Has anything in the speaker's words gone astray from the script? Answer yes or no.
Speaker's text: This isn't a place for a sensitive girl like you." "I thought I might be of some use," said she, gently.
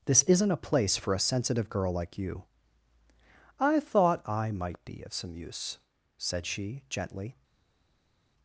no